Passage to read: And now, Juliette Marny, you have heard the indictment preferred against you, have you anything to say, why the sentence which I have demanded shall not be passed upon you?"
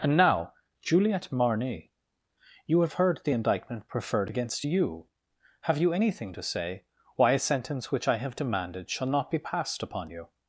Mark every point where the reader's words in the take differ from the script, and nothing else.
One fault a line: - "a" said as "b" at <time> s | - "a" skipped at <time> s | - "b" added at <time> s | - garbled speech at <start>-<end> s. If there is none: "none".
- "the" said as "a" at 7.3 s